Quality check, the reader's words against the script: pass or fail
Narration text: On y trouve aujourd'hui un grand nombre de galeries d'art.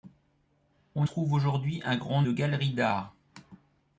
fail